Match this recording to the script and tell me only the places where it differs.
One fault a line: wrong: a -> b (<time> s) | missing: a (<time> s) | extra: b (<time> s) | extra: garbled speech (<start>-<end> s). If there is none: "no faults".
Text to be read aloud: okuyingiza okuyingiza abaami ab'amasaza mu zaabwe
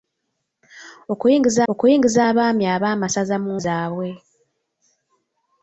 no faults